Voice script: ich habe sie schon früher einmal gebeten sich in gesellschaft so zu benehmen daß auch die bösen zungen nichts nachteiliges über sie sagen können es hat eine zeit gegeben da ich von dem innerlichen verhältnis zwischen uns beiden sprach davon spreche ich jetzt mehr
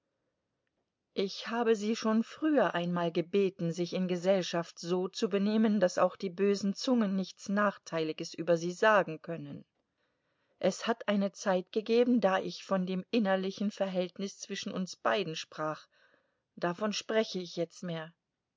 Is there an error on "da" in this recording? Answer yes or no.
no